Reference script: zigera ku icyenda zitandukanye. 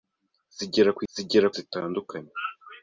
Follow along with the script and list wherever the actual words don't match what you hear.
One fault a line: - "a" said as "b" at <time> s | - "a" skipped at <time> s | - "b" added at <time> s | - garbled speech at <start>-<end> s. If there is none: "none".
- "icyenda" said as "zigera" at 1.1 s